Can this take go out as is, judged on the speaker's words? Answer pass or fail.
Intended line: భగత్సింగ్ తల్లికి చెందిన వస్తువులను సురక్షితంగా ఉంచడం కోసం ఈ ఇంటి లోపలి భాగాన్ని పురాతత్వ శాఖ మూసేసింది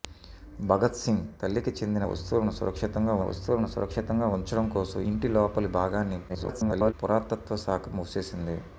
fail